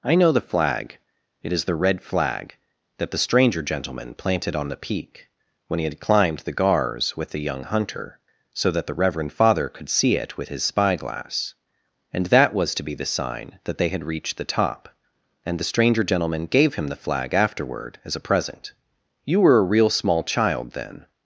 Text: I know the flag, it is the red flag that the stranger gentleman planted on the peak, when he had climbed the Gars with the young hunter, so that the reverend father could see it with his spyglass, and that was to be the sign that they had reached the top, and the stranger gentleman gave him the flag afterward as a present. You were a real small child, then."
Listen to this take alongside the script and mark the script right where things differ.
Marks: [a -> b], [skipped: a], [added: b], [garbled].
I know the flag, it is the red flag that the stranger gentleman planted on the peak, when he had climbed the Gars with the young hunter, so that the reverend father could see it with his spyglass, and that was to be the sign that they had reached the top, and the stranger gentleman gave him the flag afterward as a present. You were a real small child, then."